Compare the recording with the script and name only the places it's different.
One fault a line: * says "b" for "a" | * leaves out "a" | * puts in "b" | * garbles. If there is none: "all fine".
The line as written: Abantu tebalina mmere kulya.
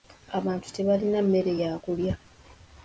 * puts in "ya"